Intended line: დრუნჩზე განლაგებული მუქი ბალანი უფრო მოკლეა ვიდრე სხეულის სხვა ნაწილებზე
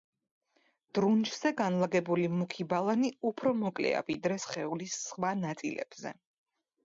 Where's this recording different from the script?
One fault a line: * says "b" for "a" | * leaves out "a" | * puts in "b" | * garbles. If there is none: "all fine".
all fine